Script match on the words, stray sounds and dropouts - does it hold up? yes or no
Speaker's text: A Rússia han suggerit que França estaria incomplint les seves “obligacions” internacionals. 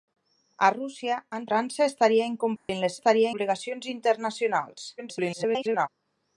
no